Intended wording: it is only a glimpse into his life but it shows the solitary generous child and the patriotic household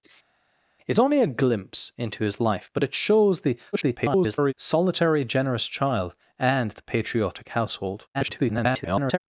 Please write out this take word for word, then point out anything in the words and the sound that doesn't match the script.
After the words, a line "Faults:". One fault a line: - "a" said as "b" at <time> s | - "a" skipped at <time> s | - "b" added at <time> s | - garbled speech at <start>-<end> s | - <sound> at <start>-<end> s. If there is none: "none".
it only a glimpse into his life but it shows the [garbled] solitary generous child and the patriotic household [garbled]
Faults:
- "is" skipped at 1.0 s
- garbled speech at 3.7-4.5 s
- garbled speech at 8.1-9.2 s